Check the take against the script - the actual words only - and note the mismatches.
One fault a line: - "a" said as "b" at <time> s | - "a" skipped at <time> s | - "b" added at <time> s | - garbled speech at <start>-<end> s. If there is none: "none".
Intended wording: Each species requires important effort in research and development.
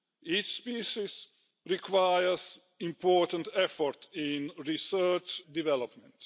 - "and" skipped at 5.4 s